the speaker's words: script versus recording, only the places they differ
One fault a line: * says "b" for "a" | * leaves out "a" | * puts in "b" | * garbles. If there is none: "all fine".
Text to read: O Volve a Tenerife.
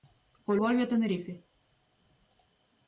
all fine